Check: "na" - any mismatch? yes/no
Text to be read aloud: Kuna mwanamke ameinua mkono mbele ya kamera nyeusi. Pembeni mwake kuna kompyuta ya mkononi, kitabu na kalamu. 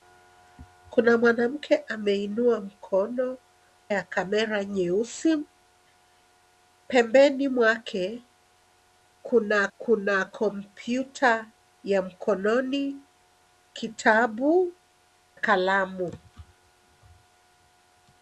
yes